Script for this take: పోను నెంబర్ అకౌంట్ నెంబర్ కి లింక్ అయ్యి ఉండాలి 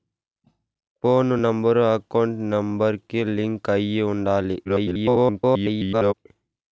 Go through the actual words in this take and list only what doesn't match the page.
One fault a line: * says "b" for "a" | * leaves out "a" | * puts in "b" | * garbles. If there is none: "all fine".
* garbles